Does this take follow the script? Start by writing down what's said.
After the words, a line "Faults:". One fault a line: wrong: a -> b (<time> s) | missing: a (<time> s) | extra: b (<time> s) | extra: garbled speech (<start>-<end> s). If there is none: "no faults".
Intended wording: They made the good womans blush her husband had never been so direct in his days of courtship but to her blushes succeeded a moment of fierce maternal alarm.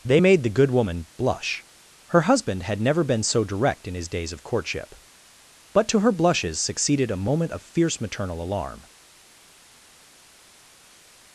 They made the good woman blush her husband had never been so direct in his days of courtship but to her blushes succeeded a moment of fierce maternal alarm.
Faults:
wrong: womans -> woman (0.7 s)